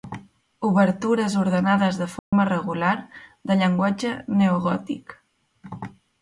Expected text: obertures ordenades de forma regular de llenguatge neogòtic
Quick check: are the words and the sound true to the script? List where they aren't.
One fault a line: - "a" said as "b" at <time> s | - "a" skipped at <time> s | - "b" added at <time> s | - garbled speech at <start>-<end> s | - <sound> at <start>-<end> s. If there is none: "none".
- dropout at 2.2-2.3 s